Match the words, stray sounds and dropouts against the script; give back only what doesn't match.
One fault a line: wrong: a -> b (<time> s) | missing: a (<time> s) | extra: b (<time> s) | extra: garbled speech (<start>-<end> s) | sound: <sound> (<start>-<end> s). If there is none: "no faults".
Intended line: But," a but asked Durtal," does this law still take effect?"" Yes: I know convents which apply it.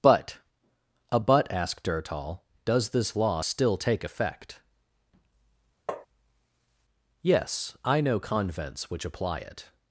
sound: tap (5.9-6.1 s)